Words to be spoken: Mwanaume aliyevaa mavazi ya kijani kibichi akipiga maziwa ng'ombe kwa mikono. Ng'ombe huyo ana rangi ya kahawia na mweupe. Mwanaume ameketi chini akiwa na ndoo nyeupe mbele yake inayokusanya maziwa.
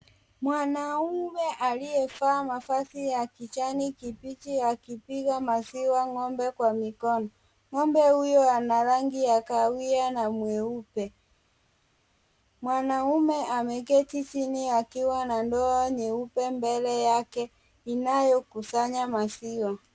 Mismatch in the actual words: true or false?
false